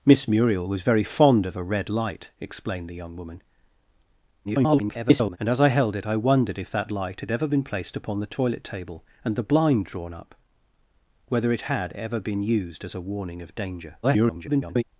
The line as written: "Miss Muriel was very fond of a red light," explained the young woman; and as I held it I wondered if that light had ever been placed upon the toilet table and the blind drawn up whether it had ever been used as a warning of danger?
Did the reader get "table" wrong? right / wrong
right